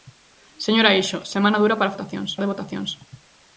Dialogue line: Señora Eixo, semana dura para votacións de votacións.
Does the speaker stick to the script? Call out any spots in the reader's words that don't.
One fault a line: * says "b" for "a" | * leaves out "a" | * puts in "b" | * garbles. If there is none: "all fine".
all fine